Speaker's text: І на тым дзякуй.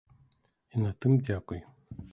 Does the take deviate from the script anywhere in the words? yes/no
no